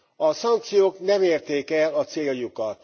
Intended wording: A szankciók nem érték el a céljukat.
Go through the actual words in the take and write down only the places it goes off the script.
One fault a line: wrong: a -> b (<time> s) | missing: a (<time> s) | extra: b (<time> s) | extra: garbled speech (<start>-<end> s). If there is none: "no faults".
no faults